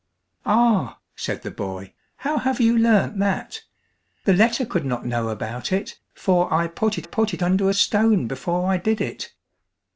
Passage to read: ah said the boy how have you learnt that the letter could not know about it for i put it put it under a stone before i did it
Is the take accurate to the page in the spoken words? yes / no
yes